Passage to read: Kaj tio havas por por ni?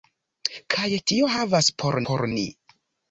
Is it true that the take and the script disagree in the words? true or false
false